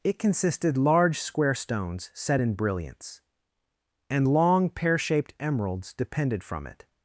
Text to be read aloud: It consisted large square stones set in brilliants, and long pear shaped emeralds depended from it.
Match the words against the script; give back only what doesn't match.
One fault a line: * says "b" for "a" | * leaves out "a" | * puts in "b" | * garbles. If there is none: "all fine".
all fine